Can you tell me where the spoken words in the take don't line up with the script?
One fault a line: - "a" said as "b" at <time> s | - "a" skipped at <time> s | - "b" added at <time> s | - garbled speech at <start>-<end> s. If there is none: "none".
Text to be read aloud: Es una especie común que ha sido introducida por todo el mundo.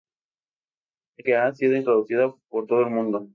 - "una especie común" skipped at 1.3 s